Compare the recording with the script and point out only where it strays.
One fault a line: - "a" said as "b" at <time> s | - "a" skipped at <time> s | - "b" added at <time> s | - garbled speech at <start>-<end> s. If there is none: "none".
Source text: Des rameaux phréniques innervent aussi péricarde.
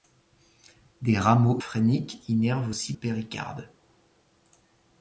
none